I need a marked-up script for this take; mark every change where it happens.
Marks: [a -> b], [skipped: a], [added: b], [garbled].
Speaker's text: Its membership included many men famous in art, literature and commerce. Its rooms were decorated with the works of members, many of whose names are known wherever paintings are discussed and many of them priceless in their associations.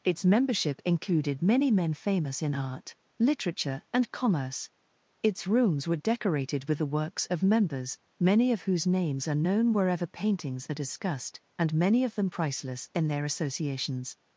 Its membership included many men famous in art, literature and commerce. Its rooms were decorated with the works of members, many of whose names are known wherever paintings are discussed and many of them priceless in their associations.